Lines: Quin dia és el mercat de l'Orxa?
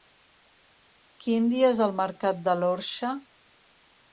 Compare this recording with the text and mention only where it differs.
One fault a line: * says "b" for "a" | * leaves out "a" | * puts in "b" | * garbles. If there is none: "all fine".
all fine